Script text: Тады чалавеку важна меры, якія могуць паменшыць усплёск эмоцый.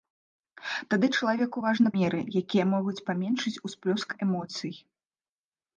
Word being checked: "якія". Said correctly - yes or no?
yes